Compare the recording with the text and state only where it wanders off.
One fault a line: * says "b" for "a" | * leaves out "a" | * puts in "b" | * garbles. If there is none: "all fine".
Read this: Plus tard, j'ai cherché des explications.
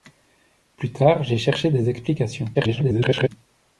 * garbles